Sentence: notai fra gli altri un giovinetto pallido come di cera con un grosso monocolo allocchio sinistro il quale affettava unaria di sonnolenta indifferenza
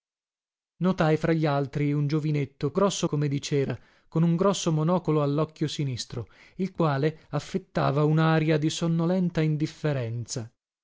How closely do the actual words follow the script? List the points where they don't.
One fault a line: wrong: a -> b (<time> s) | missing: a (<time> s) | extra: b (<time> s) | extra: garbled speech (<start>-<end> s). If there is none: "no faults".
wrong: pallido -> grosso (2.7 s)